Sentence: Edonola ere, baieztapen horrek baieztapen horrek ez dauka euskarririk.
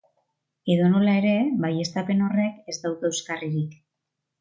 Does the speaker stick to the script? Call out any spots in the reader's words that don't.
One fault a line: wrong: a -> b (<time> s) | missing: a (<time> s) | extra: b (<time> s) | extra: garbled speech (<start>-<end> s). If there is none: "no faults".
missing: baieztapen horrek (2.8 s)